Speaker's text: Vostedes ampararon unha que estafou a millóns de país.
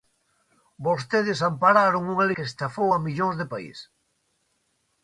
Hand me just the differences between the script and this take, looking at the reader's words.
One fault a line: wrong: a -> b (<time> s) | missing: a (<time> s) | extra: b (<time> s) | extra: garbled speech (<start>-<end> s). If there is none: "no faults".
no faults